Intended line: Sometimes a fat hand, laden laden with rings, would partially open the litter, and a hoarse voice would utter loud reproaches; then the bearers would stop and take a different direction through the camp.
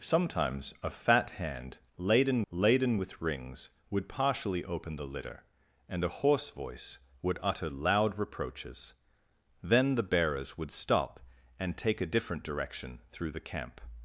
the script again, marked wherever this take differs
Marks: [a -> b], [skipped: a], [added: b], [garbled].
Sometimes a fat hand, laden laden with rings, would partially open the litter, and a hoarse voice would utter loud reproaches; then the bearers would stop and take a different direction through the camp.